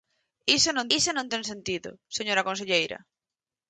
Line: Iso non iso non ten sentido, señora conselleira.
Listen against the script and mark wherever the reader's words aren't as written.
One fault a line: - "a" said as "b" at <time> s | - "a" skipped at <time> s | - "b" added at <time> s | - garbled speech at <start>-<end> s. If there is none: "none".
none